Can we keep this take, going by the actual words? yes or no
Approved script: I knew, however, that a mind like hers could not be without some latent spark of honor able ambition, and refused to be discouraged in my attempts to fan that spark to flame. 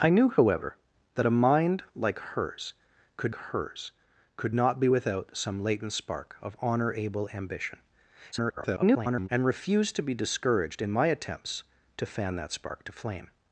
no